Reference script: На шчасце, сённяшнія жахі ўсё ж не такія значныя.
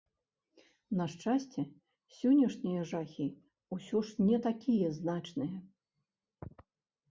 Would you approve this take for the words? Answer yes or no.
yes